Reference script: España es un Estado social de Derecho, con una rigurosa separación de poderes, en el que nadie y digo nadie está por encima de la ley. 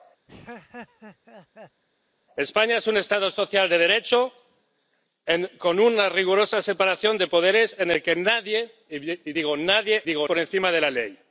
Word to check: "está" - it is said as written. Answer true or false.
false